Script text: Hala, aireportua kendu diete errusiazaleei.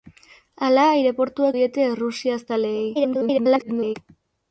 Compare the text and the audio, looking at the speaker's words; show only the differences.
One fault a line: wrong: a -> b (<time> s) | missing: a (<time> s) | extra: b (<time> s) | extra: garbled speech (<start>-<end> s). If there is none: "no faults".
missing: kendu (1.5 s)
extra: garbled speech (2.9-4.0 s)